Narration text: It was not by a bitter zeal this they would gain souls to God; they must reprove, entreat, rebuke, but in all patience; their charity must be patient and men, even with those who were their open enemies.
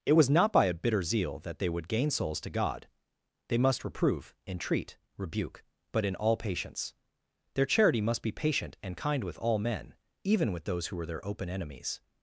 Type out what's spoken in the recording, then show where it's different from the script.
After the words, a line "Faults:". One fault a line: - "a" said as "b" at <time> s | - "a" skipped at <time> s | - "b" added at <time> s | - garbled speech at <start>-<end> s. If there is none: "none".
It was not by a bitter zeal that they would gain souls to God; they must reprove, entreat, rebuke, but in all patience; their charity must be patient and kind with all men, even with those who were their open enemies.
Faults:
- "this" said as "that" at 1.4 s
- "kind with all" added at 8.9 s